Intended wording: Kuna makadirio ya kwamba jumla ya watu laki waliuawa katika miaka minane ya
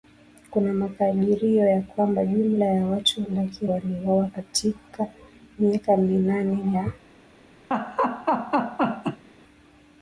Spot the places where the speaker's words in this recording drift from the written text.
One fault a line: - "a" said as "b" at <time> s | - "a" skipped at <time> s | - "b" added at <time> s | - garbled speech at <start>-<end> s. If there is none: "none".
none